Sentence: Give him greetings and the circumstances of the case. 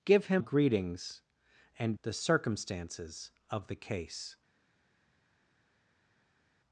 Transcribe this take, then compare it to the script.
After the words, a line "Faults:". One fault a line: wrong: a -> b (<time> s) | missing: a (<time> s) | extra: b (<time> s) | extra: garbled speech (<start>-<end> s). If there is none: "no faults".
Give him greetings and the circumstances of the case.
Faults:
no faults